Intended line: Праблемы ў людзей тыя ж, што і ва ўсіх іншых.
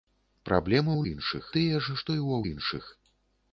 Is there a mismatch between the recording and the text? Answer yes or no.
yes